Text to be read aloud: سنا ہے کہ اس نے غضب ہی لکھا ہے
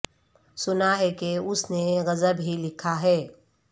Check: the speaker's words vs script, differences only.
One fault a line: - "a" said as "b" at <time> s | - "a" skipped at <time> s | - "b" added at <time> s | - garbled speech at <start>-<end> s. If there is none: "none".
none